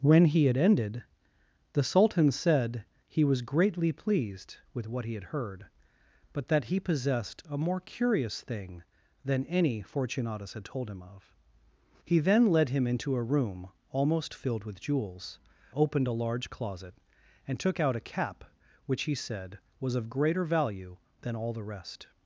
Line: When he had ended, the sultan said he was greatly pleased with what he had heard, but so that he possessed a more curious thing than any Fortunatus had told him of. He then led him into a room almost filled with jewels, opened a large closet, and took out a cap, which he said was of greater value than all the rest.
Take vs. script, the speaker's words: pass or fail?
fail